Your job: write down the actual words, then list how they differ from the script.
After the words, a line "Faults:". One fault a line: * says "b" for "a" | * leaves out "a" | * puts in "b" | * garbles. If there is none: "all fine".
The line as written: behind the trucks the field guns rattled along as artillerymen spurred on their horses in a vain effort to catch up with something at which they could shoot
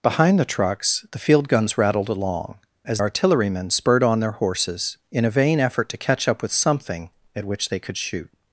behind the trucks the field guns rattled along as artillerymen spurred on their horses in a vain effort to catch up with something at which they could shoot
Faults:
all fine